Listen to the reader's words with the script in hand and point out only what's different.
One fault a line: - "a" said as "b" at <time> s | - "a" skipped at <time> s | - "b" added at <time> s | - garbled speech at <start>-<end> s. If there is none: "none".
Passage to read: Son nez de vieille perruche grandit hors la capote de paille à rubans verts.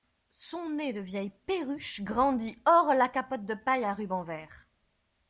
none